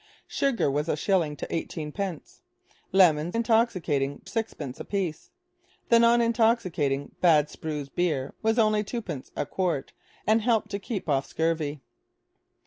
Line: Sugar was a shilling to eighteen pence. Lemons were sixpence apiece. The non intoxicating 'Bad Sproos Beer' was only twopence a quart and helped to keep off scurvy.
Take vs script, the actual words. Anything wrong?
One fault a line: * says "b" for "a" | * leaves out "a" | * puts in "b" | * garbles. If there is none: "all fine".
* says "intoxicating" for "were"